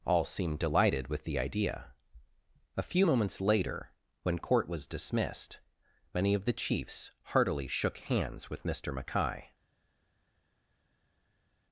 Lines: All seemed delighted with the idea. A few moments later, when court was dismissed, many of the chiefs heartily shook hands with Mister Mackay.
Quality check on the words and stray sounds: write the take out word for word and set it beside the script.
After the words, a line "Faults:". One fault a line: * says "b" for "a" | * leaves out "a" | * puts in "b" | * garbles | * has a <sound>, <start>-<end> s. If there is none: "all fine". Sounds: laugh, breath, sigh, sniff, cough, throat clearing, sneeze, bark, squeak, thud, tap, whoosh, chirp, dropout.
All seemed delighted with the idea. A few moments later, when court was dismissed, many of the chiefs heartily shook hands with Mister Mackay.
Faults:
all fine